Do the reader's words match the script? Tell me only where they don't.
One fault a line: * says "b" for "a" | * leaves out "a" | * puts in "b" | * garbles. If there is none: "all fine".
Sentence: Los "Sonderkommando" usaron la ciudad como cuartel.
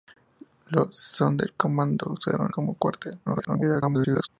* leaves out "la ciudad"
* garbles